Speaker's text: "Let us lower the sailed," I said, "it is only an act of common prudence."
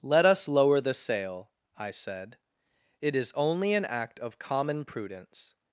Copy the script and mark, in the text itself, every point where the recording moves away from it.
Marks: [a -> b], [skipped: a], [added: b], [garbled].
"Let us lower the [sailed," -> sail] I said, "it is only an act of common prudence."